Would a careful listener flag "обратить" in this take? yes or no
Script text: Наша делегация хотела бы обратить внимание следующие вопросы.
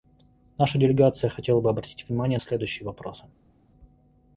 no